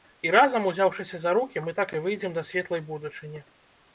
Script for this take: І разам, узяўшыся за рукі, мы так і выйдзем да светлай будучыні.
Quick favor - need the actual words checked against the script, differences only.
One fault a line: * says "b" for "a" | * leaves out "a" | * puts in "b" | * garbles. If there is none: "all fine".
all fine